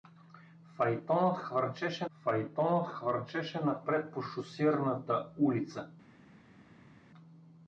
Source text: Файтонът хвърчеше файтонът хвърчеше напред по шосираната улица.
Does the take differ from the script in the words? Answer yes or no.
no